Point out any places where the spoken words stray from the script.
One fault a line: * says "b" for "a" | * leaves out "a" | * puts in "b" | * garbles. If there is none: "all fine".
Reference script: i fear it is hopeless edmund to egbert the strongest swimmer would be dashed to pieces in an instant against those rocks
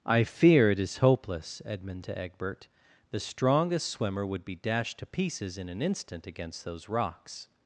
all fine